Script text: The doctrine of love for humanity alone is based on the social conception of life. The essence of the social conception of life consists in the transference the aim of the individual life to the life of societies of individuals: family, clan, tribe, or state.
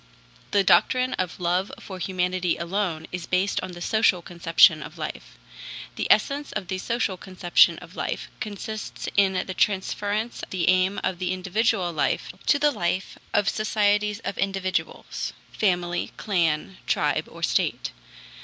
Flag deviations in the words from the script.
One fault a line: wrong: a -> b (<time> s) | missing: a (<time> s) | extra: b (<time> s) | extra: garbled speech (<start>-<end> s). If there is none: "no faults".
no faults